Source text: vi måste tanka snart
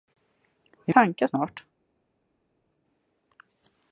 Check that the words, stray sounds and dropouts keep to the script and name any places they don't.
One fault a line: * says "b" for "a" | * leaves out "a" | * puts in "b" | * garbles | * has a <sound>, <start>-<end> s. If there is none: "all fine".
* leaves out "måste"